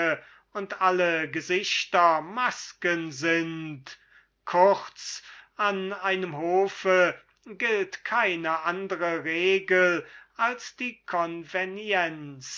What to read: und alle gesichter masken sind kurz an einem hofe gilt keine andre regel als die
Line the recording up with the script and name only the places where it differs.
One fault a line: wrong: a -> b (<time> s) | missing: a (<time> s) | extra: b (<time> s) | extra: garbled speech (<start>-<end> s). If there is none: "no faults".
no faults